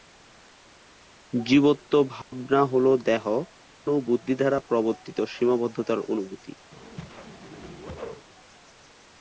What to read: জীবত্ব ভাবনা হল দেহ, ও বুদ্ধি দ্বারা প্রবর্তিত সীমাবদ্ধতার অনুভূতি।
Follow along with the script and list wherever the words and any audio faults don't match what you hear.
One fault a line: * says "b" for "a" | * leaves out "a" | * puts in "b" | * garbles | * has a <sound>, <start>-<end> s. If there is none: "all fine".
* has a dropout, 2.2-2.3 s
* has a whoosh, 6.7-8.3 s